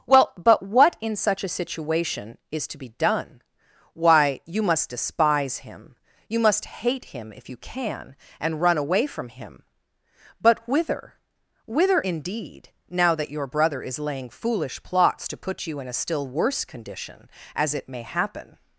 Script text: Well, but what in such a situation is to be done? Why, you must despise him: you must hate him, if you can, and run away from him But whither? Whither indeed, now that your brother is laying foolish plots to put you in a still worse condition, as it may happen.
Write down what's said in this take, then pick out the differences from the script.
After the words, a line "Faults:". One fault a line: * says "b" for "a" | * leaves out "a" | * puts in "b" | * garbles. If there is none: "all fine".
Well, but what in such a situation is to be done? Why, you must despise him: you must hate him, if you can, and run away from him But whither? Whither indeed, now that your brother is laying foolish plots to put you in a still worse condition, as it may happen.
Faults:
all fine